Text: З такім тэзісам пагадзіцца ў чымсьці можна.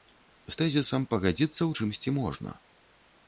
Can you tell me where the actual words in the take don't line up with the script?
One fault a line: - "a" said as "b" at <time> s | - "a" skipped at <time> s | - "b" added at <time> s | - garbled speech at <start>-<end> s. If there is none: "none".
- "такім" skipped at 0.6 s